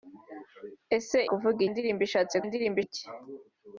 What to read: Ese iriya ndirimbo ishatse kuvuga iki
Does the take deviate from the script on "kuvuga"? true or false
true